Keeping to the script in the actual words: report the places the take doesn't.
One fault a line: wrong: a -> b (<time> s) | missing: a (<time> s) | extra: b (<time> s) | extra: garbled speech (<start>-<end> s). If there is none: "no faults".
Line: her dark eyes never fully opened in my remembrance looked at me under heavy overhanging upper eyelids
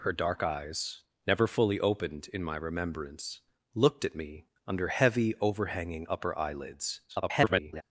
extra: garbled speech (7.1-7.8 s)